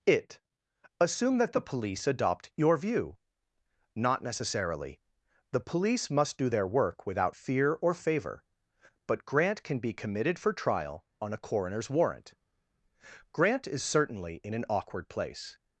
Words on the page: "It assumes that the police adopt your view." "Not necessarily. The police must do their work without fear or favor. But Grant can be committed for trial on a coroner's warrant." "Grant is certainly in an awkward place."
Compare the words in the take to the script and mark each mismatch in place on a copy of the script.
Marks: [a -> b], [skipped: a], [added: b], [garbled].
"It [assumes -> assume] that the police adopt your view." "Not necessarily. The police must do their work without fear or favor. But Grant can be committed for trial on a coroner's warrant." "Grant is certainly in an awkward place."